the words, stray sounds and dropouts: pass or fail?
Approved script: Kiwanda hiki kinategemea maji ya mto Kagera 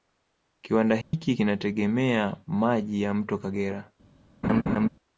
fail